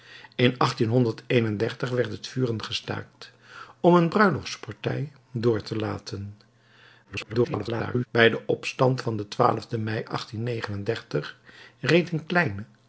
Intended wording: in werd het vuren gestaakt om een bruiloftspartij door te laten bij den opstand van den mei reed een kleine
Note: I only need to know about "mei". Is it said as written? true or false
true